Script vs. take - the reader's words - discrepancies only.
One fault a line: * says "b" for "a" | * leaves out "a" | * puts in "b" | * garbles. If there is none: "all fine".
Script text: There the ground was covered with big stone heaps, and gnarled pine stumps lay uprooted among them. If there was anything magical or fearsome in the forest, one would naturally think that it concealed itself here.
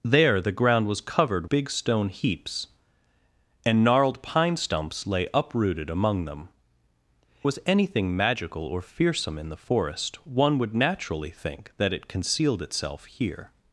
* leaves out "with"
* leaves out "If there"